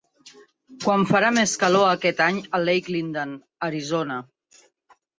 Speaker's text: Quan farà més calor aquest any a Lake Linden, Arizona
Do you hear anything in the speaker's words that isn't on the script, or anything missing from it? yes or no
no